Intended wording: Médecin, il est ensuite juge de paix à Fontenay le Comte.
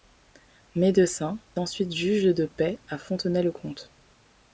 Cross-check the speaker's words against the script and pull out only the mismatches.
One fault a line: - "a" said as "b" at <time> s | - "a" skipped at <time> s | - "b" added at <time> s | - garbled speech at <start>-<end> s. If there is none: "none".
- "il est" skipped at 1.4 s